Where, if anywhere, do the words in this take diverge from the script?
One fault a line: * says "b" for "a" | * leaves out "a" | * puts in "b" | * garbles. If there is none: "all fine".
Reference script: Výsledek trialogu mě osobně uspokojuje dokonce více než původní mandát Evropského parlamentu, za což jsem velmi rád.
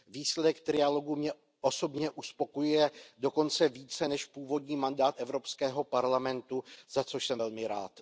all fine